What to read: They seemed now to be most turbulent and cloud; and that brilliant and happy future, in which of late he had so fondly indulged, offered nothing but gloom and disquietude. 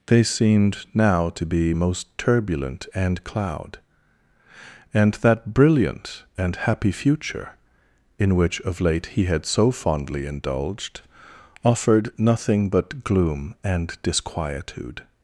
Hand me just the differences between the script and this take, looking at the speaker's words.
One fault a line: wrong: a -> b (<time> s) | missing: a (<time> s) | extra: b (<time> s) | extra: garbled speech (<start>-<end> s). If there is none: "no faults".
no faults